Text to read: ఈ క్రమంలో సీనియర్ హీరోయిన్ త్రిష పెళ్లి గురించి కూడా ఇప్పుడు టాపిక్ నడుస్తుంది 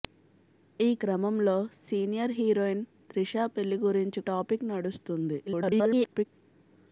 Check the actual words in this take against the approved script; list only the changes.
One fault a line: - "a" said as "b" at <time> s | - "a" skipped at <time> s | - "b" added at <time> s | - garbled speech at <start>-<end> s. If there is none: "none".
- "కూడా ఇప్పుడు" skipped at 4.2 s
- garbled speech at 5.5-6.3 s